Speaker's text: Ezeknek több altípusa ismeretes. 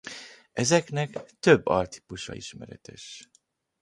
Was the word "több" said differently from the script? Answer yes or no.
no